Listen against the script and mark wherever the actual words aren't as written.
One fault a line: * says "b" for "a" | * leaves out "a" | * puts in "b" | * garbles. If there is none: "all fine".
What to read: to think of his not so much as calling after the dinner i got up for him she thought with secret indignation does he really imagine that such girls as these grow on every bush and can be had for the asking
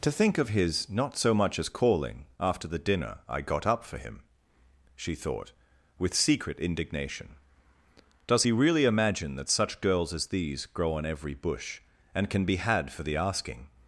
all fine